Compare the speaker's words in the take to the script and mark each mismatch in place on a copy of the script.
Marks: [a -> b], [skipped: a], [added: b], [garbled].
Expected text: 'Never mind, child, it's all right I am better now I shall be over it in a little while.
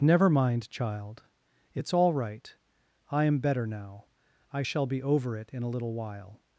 'Never mind, child, it's all right I am better now I shall be over it in a little while.